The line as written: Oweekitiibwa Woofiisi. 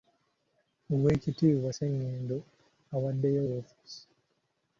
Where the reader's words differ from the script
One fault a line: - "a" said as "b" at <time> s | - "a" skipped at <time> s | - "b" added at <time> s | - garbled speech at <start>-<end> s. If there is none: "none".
- "Ssengendo awaddeyo" added at 1.7 s